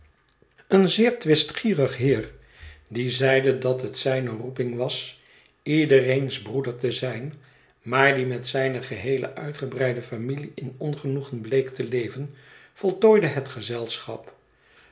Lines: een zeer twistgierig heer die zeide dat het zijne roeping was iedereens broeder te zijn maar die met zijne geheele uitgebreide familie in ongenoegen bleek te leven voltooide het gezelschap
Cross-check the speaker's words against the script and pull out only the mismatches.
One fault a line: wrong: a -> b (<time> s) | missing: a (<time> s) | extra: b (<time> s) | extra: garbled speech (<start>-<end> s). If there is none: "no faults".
no faults